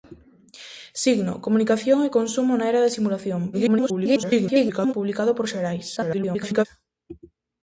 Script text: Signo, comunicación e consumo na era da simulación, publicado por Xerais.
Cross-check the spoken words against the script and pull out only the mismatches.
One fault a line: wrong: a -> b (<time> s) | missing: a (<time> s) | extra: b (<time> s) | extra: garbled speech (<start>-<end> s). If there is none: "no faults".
extra: garbled speech (3.5-4.9 s)
extra: garbled speech (6.0-6.7 s)